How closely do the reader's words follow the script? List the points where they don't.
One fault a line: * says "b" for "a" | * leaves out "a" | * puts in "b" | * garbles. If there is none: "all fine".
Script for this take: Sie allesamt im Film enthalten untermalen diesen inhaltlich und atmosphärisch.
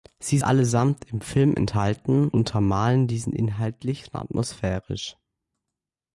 all fine